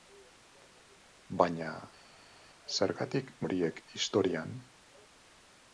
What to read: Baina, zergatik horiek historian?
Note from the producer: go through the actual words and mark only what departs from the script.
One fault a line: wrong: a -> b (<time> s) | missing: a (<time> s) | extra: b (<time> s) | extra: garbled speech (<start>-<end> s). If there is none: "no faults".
no faults